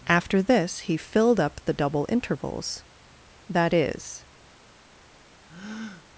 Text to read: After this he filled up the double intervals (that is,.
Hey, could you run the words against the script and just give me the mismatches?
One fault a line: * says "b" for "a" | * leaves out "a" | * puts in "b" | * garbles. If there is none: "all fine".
all fine